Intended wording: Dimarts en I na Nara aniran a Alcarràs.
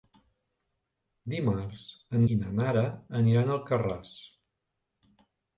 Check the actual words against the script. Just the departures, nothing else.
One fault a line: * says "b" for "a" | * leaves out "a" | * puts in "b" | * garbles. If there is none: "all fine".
all fine